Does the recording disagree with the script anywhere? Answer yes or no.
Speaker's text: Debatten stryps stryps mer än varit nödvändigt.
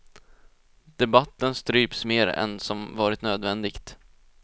yes